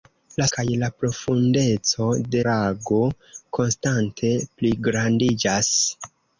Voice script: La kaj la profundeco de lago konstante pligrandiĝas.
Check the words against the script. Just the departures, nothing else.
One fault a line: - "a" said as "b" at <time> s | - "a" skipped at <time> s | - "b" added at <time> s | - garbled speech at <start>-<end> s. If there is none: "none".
none